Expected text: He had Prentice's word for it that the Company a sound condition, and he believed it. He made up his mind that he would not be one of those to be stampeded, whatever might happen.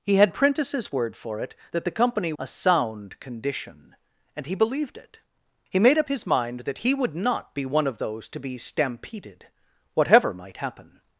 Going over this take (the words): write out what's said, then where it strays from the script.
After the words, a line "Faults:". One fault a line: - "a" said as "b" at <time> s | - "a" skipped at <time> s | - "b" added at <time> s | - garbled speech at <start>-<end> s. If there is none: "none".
He had Prentice's word for it that the Company a sound condition, and he believed it. He made up his mind that he would not be one of those to be stampeded, whatever might happen.
Faults:
none